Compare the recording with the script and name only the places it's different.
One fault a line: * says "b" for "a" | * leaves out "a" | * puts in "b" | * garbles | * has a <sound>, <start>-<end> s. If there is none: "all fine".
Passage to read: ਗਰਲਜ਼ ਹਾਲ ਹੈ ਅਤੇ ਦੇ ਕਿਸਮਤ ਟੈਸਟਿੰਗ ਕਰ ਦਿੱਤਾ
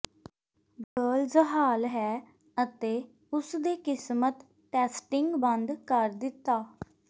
* has a dropout, 0.8-1.0 s
* puts in "ਉਸ"
* puts in "ਬੰਦ"